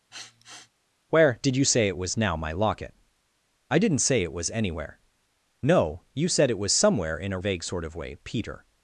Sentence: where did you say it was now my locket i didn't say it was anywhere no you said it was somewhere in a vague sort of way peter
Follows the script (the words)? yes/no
yes